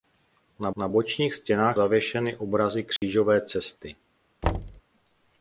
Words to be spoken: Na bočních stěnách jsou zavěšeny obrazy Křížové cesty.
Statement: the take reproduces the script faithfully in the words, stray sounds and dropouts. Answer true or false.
false